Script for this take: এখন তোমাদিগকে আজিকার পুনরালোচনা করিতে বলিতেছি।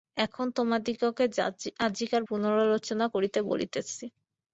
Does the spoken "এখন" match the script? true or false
true